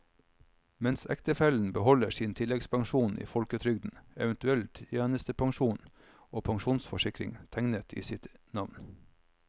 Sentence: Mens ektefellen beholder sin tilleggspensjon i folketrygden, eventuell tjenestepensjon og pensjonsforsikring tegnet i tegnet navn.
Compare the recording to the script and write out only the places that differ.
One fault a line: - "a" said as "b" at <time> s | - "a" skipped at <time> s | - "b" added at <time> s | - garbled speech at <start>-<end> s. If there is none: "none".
- "tegnet" said as "sitt" at 8.0 s